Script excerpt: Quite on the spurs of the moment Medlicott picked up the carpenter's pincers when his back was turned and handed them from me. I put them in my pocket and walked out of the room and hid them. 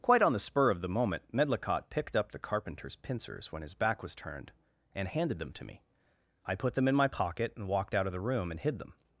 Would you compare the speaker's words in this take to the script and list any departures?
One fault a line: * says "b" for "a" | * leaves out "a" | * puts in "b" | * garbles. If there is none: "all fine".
* says "spur" for "spurs"
* says "to" for "from"